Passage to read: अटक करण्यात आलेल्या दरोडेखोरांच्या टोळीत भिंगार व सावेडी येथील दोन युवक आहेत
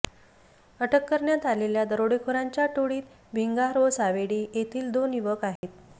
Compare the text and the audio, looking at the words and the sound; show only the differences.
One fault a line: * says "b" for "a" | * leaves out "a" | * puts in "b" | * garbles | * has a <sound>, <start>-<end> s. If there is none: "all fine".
* has a dropout, 5.6-5.6 s